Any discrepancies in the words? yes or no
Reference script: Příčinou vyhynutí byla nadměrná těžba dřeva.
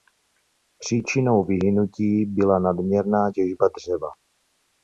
no